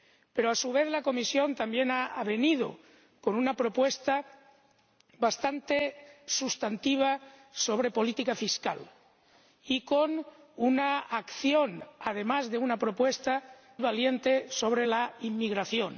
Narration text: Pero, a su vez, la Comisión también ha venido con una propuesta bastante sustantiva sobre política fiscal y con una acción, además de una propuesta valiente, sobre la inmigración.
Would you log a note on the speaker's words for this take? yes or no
no